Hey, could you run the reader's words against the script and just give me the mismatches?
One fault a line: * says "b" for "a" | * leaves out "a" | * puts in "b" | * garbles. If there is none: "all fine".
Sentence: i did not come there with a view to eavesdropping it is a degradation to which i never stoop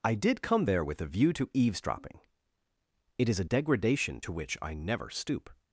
* leaves out "not"